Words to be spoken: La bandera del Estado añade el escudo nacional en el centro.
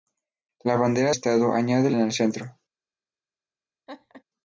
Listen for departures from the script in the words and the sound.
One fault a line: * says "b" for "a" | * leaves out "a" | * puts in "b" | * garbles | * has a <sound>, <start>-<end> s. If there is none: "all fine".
* leaves out "del"
* leaves out "escudo nacional"
* has a laugh, 3.9-4.2 s